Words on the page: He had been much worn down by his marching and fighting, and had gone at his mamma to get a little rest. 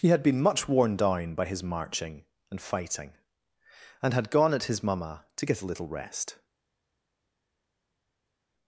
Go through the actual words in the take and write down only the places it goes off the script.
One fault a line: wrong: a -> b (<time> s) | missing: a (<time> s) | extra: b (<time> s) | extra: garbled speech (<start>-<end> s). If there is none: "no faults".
no faults